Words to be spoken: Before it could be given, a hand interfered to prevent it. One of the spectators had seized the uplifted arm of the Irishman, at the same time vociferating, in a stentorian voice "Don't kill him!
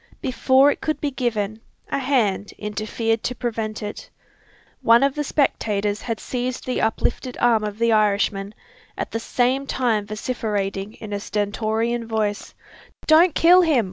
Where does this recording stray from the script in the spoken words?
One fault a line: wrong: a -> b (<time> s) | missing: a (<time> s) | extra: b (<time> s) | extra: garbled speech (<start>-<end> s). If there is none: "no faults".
no faults